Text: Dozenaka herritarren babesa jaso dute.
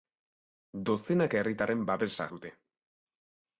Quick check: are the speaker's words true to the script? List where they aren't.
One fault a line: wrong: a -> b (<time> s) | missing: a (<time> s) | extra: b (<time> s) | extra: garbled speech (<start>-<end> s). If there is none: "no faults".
missing: jaso (2.3 s)